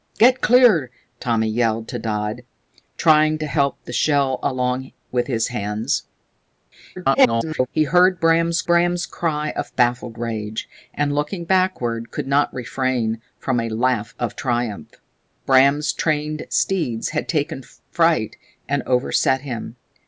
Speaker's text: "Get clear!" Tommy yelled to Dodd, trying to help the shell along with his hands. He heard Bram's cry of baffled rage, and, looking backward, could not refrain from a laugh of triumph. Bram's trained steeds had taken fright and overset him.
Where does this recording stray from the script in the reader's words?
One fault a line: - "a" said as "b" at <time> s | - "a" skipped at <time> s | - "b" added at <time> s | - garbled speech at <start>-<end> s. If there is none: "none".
- garbled speech at 7.0-7.7 s
- "Bram's" added at 8.7 s